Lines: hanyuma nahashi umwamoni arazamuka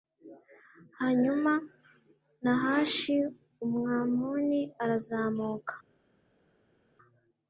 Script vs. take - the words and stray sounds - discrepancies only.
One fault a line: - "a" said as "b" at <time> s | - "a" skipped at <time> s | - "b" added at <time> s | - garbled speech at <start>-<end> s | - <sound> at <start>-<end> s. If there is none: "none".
none